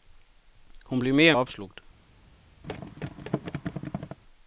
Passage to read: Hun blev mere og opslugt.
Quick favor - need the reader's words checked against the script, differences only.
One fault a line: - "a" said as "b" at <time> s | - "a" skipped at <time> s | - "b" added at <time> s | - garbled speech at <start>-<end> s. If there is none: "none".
none